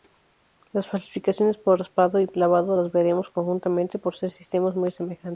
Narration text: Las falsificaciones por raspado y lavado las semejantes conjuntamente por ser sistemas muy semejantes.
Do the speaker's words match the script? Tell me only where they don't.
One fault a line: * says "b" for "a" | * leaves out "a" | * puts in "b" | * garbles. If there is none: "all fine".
* says "veremos" for "semejantes"